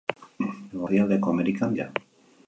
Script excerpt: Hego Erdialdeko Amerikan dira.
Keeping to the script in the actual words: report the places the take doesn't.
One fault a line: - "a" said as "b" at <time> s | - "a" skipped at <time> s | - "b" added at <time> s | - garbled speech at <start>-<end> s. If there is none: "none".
none